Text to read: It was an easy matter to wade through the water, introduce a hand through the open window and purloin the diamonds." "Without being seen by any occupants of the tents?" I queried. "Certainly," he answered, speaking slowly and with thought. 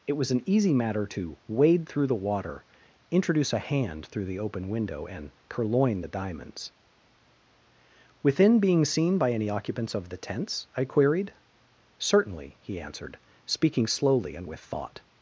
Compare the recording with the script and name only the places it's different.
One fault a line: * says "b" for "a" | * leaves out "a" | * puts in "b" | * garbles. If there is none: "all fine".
* says "Within" for "Without"